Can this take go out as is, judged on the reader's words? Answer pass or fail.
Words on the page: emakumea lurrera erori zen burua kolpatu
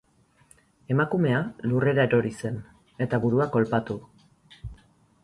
fail